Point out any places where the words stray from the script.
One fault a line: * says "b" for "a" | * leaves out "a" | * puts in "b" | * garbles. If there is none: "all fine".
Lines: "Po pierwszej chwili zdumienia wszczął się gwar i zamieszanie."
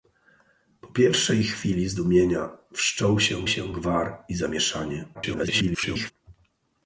* puts in "się"
* garbles